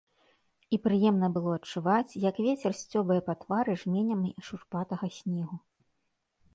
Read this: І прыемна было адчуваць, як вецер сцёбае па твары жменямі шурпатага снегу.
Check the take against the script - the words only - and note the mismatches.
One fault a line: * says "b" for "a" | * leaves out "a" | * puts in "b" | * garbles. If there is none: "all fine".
all fine